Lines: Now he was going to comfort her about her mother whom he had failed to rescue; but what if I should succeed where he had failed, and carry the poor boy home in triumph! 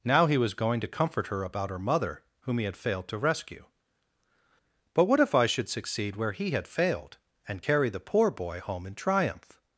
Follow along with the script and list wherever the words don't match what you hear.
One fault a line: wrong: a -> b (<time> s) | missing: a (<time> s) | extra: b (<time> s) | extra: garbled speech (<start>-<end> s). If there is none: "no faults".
no faults